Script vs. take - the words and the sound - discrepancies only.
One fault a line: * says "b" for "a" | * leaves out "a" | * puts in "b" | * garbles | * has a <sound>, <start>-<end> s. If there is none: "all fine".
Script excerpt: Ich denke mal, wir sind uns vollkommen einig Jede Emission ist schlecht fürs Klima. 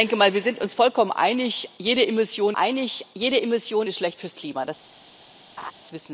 * puts in "einig Jede Emission"
* has a laugh, 5.6-5.7 s